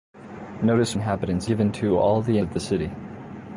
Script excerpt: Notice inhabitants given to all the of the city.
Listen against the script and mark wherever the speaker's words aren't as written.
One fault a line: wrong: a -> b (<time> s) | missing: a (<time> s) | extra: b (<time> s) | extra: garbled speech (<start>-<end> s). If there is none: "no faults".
no faults